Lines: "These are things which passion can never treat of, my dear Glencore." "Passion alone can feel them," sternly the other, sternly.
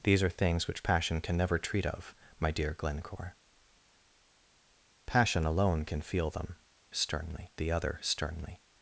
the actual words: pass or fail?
pass